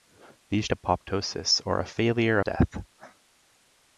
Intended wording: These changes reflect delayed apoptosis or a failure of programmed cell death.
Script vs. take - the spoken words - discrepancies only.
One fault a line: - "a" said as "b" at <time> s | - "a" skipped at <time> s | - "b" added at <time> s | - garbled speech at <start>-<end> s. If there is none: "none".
- "changes reflect delayed" skipped at 0.7 s
- "of programmed cell" skipped at 2.4 s